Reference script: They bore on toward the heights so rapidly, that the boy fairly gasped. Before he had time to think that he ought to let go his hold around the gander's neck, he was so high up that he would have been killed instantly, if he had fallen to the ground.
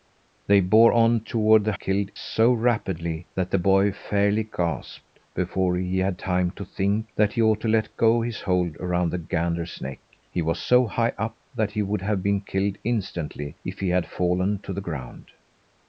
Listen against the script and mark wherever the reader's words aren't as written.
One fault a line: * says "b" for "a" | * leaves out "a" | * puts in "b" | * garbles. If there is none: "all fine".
* says "killed" for "heights"